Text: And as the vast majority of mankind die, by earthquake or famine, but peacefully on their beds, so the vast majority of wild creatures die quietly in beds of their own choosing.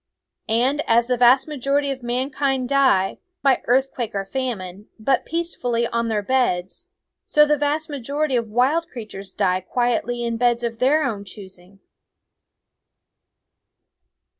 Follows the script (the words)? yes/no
yes